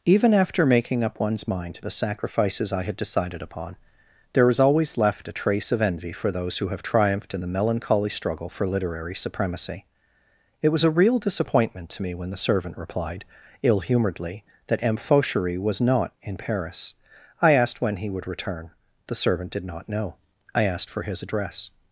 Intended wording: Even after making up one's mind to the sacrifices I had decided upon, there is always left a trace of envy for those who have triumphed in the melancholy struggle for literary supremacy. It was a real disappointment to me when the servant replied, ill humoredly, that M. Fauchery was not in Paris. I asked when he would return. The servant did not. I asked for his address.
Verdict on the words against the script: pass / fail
fail